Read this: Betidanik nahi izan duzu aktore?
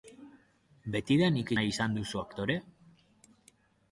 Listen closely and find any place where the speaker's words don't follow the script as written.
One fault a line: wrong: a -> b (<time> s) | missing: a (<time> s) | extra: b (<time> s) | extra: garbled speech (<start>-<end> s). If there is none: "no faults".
no faults